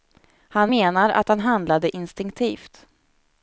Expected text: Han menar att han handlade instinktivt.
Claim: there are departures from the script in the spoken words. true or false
false